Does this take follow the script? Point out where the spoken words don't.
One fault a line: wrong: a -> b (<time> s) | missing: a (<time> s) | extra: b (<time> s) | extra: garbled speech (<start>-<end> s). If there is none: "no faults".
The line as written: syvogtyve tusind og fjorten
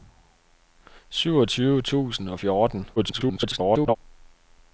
extra: garbled speech (3.0-4.0 s)